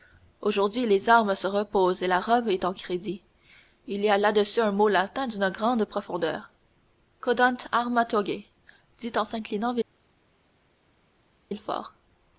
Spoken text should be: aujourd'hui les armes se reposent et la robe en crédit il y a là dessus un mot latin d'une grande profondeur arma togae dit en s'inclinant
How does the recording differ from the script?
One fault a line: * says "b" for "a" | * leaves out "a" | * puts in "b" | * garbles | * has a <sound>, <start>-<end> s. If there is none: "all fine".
* puts in "est"
* puts in "cedant"